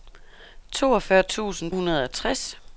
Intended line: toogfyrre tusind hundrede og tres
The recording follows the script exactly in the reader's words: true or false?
true